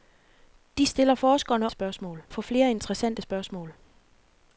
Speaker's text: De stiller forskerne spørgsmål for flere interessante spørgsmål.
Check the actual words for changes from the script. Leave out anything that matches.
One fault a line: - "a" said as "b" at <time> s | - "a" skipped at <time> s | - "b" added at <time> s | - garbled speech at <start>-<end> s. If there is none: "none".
none